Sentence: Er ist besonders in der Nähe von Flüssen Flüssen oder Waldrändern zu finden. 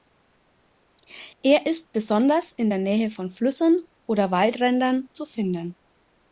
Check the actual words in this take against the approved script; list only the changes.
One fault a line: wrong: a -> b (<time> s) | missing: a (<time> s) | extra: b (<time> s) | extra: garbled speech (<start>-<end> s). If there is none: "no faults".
missing: Flüssen (3.8 s)